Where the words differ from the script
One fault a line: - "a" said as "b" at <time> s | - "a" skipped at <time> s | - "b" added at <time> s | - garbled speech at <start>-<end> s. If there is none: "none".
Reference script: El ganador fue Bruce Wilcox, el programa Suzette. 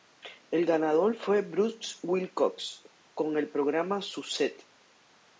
- "con" added at 3.1 s